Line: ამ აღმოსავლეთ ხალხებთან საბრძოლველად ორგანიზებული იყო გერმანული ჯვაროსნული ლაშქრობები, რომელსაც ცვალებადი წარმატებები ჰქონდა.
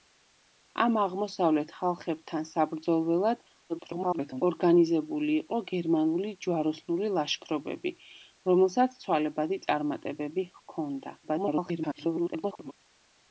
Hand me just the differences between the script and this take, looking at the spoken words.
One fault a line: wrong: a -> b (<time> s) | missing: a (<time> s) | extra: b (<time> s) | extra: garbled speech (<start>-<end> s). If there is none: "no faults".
extra: garbled speech (3.7-4.4 s)
extra: garbled speech (11.2-12.7 s)